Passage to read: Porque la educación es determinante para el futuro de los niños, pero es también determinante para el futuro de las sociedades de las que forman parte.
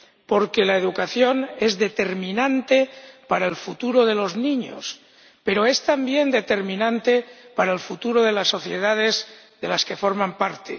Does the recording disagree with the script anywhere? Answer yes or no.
no